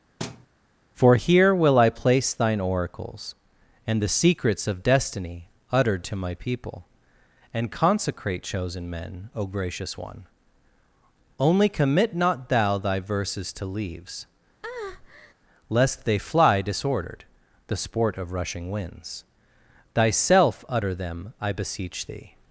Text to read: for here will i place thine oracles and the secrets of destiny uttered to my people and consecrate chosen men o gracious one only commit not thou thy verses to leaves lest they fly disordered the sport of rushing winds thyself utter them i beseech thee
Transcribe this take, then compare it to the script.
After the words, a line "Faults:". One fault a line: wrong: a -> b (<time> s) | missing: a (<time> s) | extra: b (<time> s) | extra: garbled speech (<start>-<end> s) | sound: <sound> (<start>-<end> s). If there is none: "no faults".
for here will i place thine oracles and the secrets of destiny uttered to my people and consecrate chosen men o gracious one only commit not thou thy verses to leaves lest they fly disordered the sport of rushing winds thyself utter them i beseech thee
Faults:
sound: thud (0.2-0.5 s)
sound: breath (14.6-15.3 s)